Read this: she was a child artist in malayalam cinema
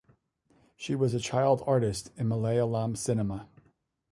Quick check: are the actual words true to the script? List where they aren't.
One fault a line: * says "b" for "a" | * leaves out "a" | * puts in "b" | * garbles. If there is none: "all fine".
all fine